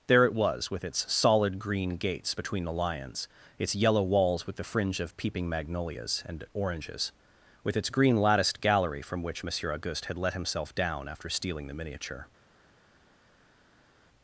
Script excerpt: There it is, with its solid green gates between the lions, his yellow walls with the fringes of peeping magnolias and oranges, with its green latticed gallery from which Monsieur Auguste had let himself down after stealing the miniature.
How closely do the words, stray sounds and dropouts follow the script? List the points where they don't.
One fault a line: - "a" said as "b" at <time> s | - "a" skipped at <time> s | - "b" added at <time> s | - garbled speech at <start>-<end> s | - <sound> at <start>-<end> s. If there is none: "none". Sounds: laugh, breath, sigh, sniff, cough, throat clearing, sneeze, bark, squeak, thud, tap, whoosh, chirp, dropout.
- "is" said as "was" at 0.3 s
- "his" said as "its" at 3.6 s
- "fringes" said as "fringe" at 4.6 s